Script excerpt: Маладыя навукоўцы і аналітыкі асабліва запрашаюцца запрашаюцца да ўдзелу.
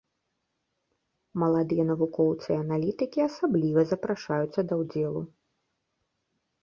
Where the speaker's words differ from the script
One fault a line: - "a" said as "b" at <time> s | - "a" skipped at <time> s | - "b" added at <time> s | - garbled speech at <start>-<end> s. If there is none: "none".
- "запрашаюцца" skipped at 4.6 s